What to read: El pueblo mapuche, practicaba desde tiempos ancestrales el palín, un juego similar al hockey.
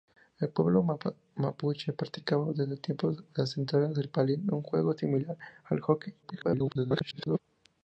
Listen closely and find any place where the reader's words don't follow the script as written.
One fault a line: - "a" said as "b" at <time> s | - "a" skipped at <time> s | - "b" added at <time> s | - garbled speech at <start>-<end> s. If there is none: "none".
- garbled speech at 6.2-7.4 s